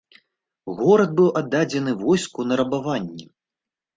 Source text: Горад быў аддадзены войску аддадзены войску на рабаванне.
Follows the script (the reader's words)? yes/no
no